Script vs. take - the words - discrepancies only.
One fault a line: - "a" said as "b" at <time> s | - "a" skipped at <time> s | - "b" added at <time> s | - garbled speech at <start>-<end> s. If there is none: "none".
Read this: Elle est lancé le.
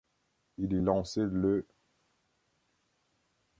- "Elle" said as "Il" at 0.6 s